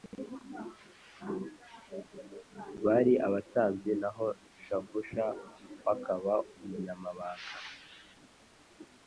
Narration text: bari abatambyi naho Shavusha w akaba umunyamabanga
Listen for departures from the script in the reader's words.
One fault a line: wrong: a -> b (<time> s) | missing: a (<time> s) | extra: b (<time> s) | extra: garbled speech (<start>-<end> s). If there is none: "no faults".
no faults